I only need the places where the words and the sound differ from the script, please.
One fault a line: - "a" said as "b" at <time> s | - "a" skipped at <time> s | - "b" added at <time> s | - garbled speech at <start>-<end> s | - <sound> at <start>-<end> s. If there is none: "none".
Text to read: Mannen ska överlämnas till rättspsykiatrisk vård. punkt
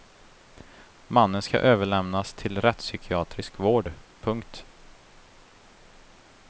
none